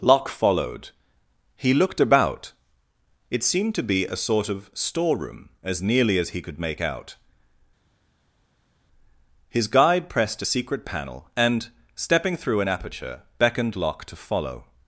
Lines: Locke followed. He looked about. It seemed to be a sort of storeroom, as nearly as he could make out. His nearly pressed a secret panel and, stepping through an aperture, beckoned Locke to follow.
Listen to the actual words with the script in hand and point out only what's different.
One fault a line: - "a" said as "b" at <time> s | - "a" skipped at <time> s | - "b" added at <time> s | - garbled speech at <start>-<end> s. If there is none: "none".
- "nearly" said as "guide" at 9.7 s